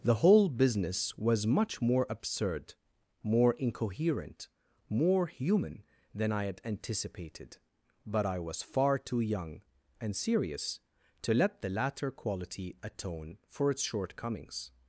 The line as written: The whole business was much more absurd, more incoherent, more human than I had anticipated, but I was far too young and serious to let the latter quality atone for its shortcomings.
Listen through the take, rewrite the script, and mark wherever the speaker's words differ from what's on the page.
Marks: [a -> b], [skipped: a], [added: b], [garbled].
The whole business was much more absurd, more incoherent, more human than I had anticipated, but I was far too young and serious to let the latter quality atone for its shortcomings.